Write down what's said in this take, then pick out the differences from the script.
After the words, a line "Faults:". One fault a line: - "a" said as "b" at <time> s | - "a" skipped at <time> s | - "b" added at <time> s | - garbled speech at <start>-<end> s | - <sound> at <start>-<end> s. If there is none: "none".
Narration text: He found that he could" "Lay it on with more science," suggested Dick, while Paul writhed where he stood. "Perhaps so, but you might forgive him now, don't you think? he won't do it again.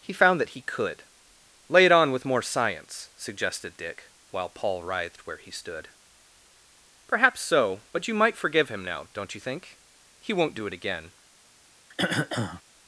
He found that he could" "Lay it on with more science," suggested Dick, while Paul writhed where he stood. "Perhaps so, but you might forgive him now, don't you think? he won't do it again.
Faults:
- throat clearing at 11.9-12.6 s